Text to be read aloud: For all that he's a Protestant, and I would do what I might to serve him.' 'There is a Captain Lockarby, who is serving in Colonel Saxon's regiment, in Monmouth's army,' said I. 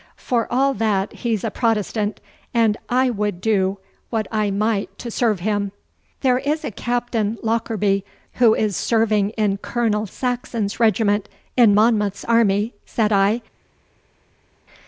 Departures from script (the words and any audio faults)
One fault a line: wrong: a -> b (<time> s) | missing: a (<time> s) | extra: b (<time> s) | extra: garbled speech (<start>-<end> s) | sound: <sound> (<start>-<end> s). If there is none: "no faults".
no faults